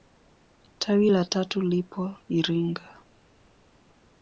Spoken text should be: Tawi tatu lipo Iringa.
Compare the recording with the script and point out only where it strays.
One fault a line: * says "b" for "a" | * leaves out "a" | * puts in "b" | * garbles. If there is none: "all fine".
* puts in "la"